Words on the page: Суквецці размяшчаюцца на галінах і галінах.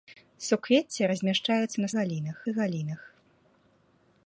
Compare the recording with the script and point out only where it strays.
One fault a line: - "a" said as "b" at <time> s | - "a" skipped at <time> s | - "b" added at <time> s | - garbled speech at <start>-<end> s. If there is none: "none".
none